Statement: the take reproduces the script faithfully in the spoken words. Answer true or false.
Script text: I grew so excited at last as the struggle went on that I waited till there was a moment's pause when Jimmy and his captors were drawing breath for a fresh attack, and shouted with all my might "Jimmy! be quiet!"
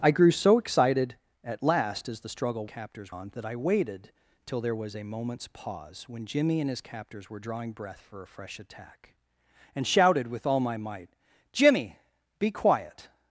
false